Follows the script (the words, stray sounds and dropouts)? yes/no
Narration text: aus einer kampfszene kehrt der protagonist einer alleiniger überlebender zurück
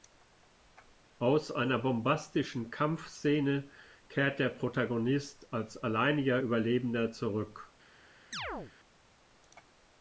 no